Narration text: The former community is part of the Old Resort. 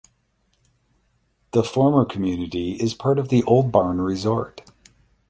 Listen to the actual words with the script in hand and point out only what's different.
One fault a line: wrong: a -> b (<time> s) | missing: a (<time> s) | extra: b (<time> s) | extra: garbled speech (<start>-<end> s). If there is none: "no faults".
extra: Barn (3.7 s)